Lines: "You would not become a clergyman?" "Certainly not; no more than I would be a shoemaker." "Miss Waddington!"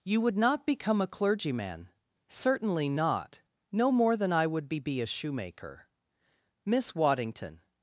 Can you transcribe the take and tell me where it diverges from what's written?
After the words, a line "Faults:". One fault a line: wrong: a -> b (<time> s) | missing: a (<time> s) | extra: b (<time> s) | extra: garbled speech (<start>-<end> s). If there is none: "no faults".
"You would not become a clergyman?" "Certainly not; no more than I would be be a shoemaker." "Miss Waddington!"
Faults:
extra: be (4.8 s)